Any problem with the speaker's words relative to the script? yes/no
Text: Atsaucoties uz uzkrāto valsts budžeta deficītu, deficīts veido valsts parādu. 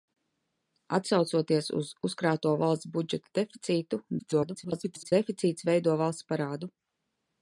yes